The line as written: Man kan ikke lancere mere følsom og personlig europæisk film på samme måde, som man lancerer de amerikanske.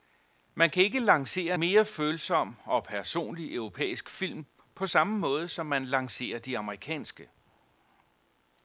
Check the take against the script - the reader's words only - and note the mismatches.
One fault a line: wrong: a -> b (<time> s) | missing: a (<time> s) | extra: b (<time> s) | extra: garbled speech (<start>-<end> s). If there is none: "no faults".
no faults